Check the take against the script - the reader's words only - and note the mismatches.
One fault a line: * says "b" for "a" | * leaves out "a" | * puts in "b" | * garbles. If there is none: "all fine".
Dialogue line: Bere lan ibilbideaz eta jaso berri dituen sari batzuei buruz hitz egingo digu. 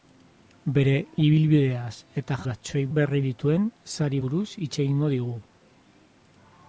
* leaves out "lan"
* says "batzuei" for "jaso"
* leaves out "batzuei"